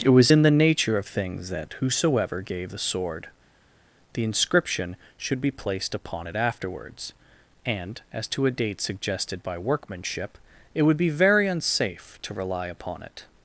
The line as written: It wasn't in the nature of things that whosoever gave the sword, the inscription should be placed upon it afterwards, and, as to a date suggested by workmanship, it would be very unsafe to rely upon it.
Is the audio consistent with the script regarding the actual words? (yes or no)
no